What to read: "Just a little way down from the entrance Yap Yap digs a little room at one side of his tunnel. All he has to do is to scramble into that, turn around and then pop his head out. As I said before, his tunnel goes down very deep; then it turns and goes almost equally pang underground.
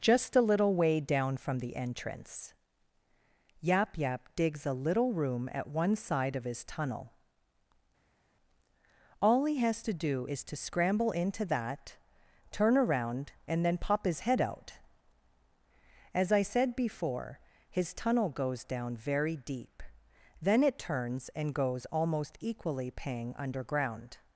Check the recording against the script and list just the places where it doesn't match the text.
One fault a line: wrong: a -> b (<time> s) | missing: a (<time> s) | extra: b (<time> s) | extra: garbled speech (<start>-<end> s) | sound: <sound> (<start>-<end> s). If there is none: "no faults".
no faults